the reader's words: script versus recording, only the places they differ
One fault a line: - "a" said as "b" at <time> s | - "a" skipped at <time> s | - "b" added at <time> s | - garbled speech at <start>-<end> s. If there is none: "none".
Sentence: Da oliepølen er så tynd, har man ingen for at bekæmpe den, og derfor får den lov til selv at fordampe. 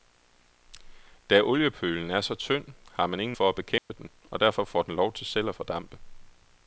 none